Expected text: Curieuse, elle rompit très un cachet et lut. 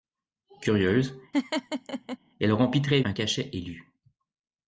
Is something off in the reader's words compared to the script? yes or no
no